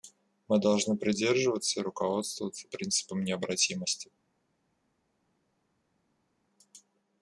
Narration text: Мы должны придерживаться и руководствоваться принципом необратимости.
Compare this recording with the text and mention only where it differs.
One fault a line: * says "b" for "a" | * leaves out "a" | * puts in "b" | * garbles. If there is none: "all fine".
all fine